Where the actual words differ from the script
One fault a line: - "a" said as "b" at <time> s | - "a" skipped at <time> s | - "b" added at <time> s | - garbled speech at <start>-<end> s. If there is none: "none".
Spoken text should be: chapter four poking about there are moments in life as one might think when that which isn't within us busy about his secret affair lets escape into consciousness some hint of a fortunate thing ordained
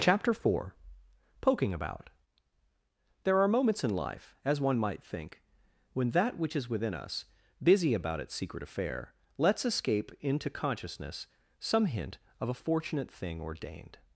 - "isn't" said as "is" at 6.5 s
- "his" said as "its" at 8.2 s